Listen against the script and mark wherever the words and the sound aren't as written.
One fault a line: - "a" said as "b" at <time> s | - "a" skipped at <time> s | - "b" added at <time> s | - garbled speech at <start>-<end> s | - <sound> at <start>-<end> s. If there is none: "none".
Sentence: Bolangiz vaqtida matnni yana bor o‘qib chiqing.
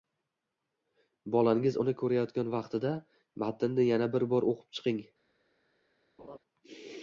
- "uni ko‘rayotgan" added at 1.8 s
- "bir" added at 4.2 s
- laugh at 6.2-6.4 s